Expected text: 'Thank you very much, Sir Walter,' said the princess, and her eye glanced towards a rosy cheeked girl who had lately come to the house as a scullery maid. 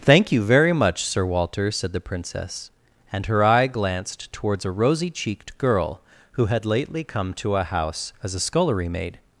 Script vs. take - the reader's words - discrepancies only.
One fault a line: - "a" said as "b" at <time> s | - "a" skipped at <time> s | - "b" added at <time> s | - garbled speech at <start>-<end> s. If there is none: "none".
- "the" said as "a" at 7.5 s